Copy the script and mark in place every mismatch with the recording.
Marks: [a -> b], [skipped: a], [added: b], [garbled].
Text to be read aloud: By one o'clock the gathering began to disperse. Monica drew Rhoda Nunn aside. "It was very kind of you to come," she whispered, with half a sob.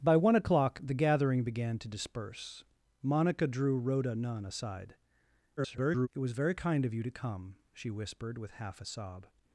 By one o'clock the gathering began to disperse. Monica drew Rhoda Nunn aside. [garbled] "It was very kind of you to come," she whispered, with half a sob.